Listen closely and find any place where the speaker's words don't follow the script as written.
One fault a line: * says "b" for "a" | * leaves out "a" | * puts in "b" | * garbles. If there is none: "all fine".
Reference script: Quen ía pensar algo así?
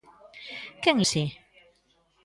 * leaves out "ía pensar algo"